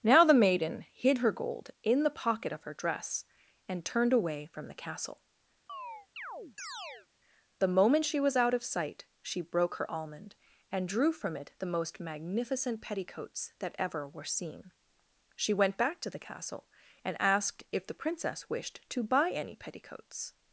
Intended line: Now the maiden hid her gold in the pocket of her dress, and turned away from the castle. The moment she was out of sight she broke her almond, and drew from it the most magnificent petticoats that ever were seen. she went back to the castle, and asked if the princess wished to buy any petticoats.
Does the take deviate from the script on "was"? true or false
false